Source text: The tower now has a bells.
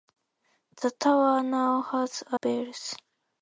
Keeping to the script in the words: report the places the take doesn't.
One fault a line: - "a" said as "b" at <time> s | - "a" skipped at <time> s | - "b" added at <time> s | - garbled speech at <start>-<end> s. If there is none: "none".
none